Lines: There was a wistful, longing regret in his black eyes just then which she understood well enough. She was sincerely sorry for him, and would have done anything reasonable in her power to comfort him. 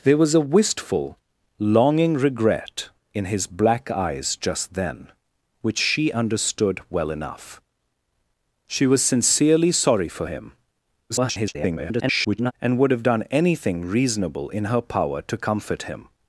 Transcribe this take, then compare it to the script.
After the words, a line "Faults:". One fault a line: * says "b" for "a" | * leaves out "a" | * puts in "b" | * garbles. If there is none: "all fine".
There was a wistful, longing regret in his black eyes just then which she understood well enough. She was sincerely sorry for him, [garbled] and would have done anything reasonable in her power to comfort him.
Faults:
* garbles